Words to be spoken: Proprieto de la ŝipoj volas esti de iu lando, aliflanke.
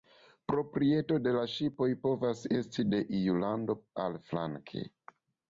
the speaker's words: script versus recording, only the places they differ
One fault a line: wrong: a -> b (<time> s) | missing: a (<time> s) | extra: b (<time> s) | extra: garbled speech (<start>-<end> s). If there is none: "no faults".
wrong: volas -> povas (2.1 s)